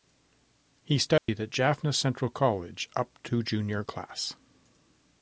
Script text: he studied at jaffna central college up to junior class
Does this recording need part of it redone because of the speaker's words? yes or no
no